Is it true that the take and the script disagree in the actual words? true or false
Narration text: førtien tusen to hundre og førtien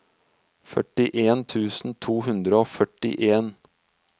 false